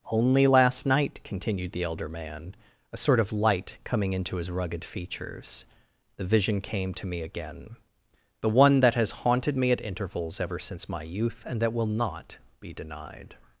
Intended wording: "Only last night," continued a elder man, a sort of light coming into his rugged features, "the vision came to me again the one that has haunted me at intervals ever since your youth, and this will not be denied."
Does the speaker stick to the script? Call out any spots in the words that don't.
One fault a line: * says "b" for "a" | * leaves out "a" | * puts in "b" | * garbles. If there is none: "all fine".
* says "the" for "a"
* says "my" for "your"
* says "that" for "this"